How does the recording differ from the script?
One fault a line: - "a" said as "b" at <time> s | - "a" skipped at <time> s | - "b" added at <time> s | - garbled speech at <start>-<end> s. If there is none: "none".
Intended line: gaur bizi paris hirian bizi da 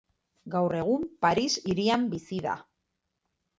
- "bizi" said as "egun" at 0.8 s